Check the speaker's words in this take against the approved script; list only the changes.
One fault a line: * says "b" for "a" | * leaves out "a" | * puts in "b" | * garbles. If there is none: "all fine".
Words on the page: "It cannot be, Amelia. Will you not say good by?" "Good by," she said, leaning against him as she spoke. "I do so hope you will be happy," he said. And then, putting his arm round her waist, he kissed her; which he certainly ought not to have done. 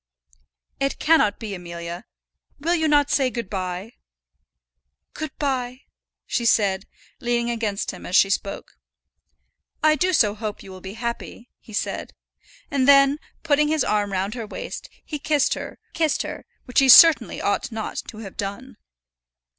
* puts in "kissed her"